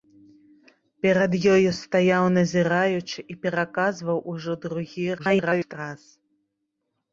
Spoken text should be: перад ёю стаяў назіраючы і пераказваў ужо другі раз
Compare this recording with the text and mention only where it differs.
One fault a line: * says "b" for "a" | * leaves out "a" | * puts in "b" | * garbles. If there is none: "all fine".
* garbles